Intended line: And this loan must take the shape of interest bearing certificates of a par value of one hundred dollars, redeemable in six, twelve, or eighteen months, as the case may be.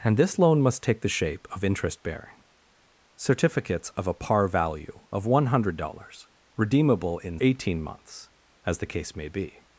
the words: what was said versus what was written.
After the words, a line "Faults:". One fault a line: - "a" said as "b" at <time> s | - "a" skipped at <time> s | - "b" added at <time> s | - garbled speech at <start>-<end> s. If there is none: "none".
And this loan must take the shape of interest bearing certificates of a par value of one hundred dollars, redeemable in eighteen months, as the case may be.
Faults:
- "six twelve or" skipped at 7.4 s